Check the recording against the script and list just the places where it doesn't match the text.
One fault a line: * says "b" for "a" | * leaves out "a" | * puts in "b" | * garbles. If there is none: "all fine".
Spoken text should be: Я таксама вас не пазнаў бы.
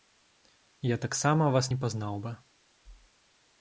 all fine